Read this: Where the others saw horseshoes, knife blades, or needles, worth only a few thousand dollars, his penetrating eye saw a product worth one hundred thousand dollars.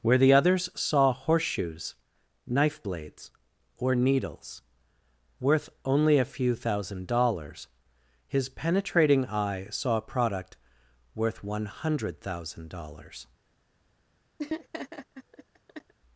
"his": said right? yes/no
yes